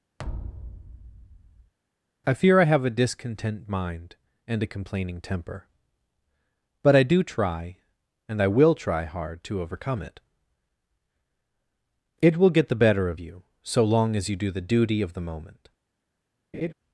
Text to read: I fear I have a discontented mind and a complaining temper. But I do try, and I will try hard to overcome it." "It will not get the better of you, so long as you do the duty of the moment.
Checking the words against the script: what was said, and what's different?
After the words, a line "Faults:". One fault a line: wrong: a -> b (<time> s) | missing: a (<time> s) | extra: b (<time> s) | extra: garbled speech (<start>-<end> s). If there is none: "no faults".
I fear I have a discontent mind and a complaining temper. But I do try, and I will try hard to overcome it." "It will get the better of you, so long as you do the duty of the moment.
Faults:
wrong: discontented -> discontent (2.9 s)
missing: not (12.5 s)